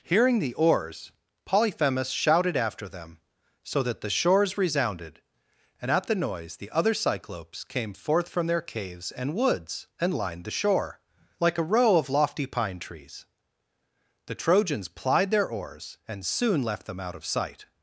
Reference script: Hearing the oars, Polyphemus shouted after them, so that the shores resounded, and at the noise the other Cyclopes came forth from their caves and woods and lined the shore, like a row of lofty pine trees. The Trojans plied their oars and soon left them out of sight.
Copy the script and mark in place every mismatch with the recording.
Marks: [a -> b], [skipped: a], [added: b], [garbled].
Hearing the oars, Polyphemus shouted after them, so that the shores resounded, and at the noise the other Cyclopes came forth from their caves and woods and lined the shore, like a row of lofty pine trees. The Trojans plied their oars and soon left them out of sight.